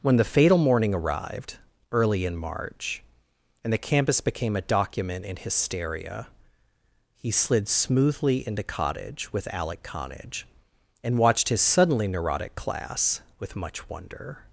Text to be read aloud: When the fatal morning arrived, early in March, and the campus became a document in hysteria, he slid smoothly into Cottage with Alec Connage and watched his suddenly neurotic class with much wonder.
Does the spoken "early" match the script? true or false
true